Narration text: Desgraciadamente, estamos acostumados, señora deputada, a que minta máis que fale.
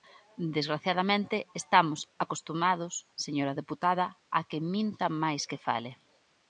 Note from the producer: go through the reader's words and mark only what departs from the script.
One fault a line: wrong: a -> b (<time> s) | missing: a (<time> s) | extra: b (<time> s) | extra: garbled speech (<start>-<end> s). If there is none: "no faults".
no faults